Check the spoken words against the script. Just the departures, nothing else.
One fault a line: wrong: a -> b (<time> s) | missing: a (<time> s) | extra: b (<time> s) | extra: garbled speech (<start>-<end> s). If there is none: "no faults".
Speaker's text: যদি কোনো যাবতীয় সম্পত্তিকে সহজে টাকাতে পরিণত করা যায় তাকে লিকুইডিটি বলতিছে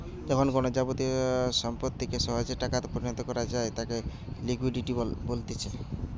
wrong: যদি -> যখন (0.3 s)